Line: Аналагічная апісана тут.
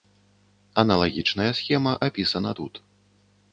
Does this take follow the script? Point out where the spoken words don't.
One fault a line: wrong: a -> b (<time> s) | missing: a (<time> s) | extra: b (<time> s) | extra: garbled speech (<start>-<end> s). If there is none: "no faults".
extra: схема (1.6 s)